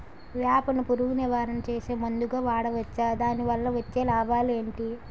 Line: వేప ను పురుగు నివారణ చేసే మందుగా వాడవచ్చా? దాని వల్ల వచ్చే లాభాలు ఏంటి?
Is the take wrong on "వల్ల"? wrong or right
right